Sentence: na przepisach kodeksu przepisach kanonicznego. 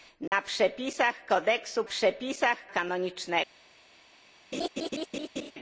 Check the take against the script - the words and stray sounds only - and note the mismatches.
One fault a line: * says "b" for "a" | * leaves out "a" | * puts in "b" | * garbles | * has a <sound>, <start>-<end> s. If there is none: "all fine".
* has a dropout, 0.3-0.3 s
* has a laugh, 4.5-5.5 s